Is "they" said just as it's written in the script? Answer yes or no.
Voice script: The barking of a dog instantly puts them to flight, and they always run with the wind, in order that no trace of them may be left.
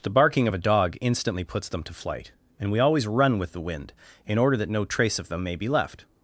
no